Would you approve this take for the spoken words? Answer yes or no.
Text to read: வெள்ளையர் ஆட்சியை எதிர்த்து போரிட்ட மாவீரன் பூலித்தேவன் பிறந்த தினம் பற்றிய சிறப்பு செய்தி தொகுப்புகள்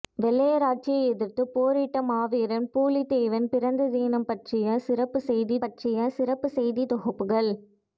no